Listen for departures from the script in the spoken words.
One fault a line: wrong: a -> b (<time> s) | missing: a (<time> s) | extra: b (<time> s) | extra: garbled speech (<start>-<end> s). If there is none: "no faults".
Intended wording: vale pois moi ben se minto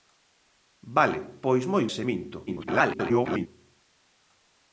missing: ben (1.9 s)
extra: garbled speech (2.5-3.5 s)